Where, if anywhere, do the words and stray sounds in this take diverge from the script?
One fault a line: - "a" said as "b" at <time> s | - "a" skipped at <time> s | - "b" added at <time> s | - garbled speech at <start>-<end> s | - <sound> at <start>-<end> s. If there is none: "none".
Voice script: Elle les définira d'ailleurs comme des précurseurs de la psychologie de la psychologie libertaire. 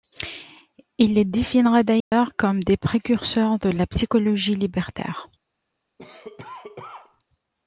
- "Elle" said as "Il" at 1.0 s
- dropout at 2.0-2.1 s
- "de la psychologie" skipped at 4.5 s
- cough at 6.0-7.2 s